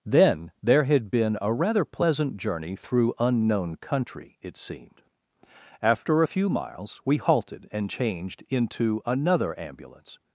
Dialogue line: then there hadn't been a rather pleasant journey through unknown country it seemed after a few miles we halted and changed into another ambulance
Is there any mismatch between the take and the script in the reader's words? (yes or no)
yes